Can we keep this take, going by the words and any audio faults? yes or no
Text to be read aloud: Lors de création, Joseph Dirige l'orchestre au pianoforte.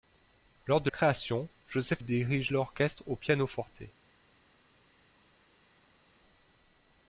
yes